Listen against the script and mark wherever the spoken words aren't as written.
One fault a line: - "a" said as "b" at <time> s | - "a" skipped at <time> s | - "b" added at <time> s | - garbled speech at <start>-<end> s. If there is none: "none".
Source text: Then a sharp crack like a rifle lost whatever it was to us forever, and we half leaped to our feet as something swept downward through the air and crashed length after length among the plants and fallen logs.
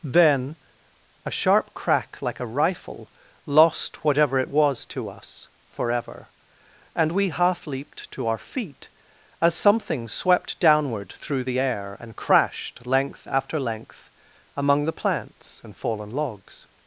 none